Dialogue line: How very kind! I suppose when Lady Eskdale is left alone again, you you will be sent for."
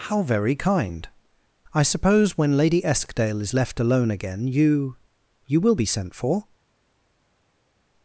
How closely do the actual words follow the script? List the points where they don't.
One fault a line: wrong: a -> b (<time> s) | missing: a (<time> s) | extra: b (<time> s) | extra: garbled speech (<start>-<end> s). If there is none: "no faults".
no faults